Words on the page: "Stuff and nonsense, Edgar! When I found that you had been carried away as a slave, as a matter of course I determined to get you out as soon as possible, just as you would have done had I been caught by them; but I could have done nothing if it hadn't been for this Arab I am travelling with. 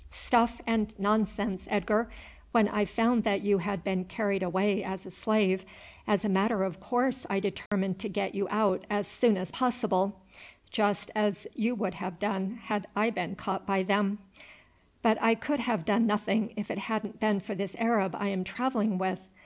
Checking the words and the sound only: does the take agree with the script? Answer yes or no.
no